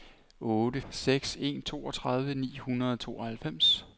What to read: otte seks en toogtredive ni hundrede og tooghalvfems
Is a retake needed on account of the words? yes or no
no